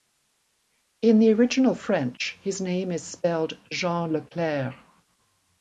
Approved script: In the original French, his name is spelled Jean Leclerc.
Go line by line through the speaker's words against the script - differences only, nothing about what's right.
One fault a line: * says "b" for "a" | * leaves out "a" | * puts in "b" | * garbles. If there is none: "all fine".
all fine